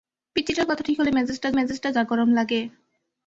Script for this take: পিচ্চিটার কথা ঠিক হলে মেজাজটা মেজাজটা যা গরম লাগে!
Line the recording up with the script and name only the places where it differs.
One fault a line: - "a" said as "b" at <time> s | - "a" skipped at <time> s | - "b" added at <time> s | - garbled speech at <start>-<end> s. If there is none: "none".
none